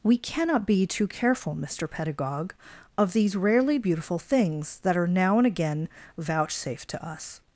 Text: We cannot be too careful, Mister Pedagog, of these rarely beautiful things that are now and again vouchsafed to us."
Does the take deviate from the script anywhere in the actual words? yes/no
no